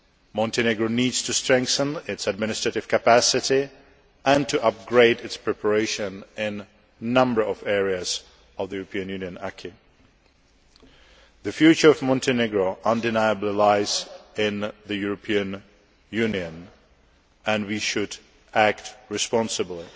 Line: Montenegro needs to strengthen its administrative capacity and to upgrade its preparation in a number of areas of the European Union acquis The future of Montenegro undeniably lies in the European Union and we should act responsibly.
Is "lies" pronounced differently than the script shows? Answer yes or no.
no